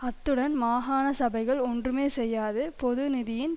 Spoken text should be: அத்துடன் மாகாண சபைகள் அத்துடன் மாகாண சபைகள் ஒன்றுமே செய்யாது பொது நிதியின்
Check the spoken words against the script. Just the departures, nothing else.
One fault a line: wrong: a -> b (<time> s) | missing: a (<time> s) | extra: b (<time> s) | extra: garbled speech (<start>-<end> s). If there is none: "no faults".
missing: அத்துடன் மாகாண சபைகள் (1.6 s)